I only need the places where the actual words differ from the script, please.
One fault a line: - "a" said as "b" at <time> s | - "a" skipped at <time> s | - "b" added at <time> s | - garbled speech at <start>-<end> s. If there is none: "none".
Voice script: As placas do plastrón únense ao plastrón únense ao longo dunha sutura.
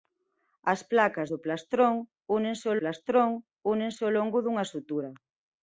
none